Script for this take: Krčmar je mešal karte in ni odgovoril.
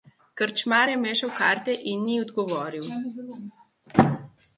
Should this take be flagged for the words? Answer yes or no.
no